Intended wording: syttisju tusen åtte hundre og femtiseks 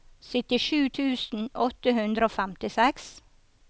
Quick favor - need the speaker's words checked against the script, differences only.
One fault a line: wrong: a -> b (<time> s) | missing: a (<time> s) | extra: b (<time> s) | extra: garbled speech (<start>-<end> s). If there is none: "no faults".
no faults